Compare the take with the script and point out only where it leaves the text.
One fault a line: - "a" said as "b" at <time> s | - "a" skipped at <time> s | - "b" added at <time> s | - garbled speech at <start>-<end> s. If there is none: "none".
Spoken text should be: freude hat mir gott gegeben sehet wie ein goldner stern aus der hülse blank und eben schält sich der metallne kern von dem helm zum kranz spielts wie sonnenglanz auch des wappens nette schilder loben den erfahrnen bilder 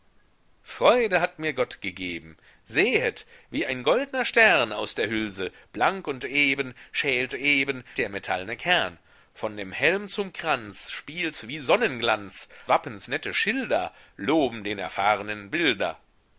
- "sich" said as "eben" at 7.3 s
- "auch des" skipped at 12.5 s